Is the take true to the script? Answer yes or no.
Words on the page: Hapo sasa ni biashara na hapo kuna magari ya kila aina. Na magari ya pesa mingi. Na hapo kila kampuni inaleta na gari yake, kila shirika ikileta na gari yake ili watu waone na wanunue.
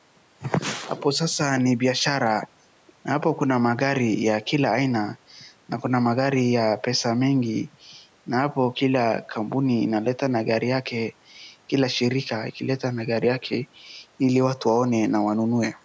no